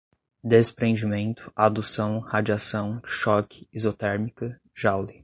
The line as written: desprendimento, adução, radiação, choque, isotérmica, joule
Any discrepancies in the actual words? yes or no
no